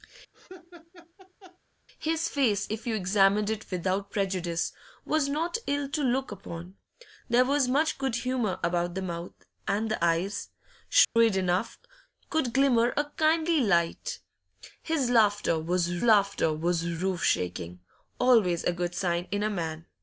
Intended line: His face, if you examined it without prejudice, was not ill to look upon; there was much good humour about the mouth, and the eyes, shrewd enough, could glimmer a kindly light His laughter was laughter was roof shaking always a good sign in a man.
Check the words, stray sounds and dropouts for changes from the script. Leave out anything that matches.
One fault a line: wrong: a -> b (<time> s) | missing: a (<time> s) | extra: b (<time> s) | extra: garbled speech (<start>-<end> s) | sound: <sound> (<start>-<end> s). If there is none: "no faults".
sound: laugh (0.3-1.6 s)
sound: dropout (11.0-11.2 s)